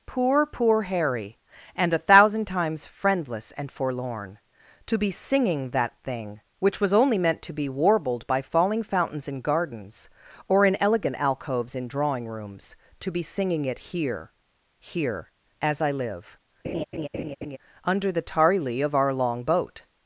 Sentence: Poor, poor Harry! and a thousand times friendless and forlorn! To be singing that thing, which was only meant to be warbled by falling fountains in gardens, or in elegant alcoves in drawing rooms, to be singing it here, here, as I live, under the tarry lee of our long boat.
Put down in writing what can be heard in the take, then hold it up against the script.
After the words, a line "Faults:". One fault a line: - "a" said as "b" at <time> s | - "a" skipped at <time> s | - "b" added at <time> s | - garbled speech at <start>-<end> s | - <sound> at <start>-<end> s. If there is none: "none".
Poor, poor Harry! and a thousand times friendless and forlorn! To be singing that thing, which was only meant to be warbled by falling fountains in gardens, or in elegant alcoves in drawing rooms, to be singing it here, here, as I live, under the tarry lee of our long boat.
Faults:
- laugh at 16.6-17.6 s